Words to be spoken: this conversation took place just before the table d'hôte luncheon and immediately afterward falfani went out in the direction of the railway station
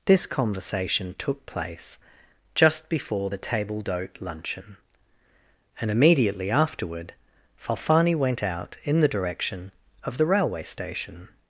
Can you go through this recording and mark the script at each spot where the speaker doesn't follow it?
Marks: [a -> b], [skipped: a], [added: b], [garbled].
this conversation took place just before the table d'hôte luncheon and immediately afterward falfani went out in the direction of the railway station